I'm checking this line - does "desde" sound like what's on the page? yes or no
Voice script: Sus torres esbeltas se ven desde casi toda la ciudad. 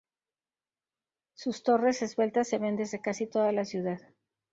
yes